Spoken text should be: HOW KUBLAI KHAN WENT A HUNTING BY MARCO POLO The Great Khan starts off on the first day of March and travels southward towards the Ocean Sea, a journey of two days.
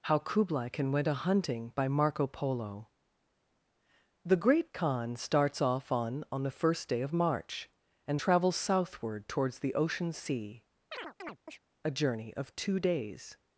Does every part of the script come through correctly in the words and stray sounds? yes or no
no